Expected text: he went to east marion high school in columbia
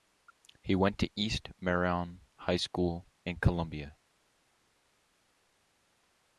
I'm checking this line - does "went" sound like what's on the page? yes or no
yes